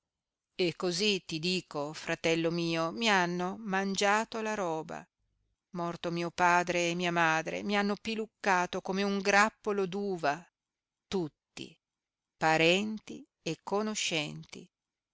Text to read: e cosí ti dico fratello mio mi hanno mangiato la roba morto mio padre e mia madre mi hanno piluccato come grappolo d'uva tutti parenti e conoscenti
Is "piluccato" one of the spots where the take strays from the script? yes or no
no